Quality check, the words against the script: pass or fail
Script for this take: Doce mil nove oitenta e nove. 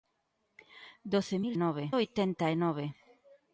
pass